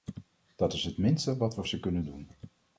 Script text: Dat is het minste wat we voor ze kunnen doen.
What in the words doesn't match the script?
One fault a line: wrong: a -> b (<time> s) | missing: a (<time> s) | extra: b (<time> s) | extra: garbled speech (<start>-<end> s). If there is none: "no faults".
missing: voor (1.6 s)